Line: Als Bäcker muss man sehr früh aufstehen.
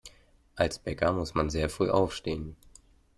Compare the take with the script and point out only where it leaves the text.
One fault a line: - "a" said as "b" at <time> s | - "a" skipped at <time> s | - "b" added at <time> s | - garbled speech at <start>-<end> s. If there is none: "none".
none